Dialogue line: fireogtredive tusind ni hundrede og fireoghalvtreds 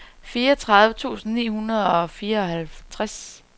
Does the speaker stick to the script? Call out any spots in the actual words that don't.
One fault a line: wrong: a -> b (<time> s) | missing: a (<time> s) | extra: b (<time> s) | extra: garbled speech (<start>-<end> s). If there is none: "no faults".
no faults